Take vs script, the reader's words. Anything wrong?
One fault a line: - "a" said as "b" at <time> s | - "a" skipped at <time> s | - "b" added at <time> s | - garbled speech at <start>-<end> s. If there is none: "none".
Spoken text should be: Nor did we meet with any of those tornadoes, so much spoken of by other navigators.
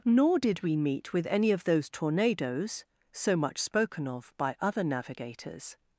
none